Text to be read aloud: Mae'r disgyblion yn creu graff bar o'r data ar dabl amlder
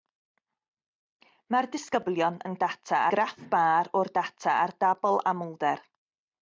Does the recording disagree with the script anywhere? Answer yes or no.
yes